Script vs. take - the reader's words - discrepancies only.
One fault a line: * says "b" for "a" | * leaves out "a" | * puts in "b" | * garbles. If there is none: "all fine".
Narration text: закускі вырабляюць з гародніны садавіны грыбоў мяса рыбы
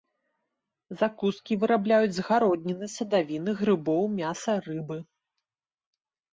all fine